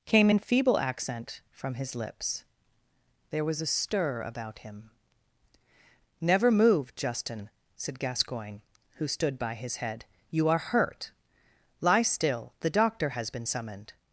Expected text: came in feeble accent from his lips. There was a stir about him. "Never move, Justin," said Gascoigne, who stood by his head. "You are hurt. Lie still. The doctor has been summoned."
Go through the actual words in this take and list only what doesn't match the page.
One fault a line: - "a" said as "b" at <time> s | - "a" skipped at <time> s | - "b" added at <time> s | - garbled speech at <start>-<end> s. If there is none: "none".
none